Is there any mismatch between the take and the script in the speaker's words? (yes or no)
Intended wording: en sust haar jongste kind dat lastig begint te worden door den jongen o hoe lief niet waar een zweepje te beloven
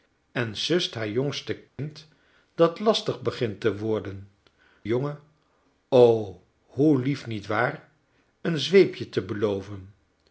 yes